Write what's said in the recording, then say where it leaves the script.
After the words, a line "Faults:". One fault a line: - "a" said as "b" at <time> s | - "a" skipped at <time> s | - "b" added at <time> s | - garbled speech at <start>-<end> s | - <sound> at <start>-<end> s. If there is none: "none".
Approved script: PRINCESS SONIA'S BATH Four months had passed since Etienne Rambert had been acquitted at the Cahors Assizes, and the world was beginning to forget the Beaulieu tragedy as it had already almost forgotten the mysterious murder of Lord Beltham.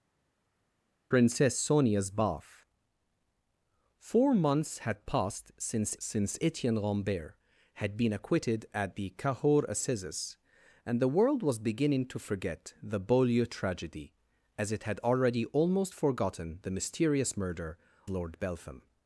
PRINCESS SONIA'S BATH Four months had passed since since Etienne Rambert had been acquitted at the Cahors Assizes, and the world was beginning to forget the Beaulieu tragedy as it had already almost forgotten the mysterious murder Lord Beltham.
Faults:
- "since" added at 6.0 s
- "of" skipped at 17.8 s